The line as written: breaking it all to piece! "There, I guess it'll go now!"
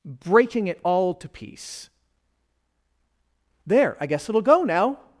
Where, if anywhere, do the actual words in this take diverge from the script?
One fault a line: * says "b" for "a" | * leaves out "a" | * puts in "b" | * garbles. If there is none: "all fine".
all fine